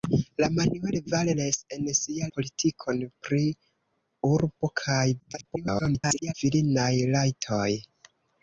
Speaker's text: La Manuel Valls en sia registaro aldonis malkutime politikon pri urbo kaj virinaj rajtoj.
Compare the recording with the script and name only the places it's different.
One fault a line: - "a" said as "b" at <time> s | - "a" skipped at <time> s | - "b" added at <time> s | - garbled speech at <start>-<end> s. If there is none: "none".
- "registaro aldonis malkutime" skipped at 2.3 s
- garbled speech at 5.2-6.3 s